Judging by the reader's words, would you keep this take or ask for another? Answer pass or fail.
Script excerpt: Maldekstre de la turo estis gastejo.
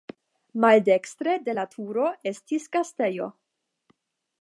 pass